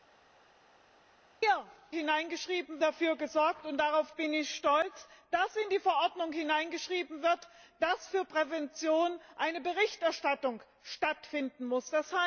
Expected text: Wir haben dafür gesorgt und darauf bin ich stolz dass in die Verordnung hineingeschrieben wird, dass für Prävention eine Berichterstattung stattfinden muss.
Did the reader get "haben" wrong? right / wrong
wrong